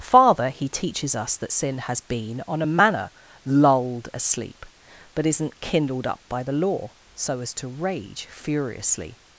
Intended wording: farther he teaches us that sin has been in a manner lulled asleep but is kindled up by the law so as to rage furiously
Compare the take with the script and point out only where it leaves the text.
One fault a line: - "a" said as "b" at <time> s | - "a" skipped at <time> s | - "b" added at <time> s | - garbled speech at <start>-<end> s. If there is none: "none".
- "in" said as "on" at 2.5 s
- "is" said as "isn't" at 5.3 s